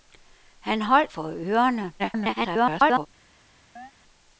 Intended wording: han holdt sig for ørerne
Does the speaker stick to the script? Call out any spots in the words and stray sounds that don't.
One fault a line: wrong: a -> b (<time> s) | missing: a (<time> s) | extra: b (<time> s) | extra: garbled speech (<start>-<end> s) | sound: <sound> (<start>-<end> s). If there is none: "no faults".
missing: sig (1.1 s)
extra: garbled speech (2.0-3.1 s)
sound: chirp (3.8-3.9 s)